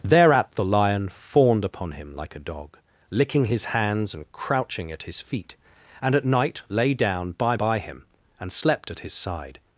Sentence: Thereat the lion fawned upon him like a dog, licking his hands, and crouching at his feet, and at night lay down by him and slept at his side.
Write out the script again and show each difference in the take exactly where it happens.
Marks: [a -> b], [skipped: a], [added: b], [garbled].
Thereat the lion fawned upon him like a dog, licking his hands, and crouching at his feet, and at night lay down by [added: by] him and slept at his side.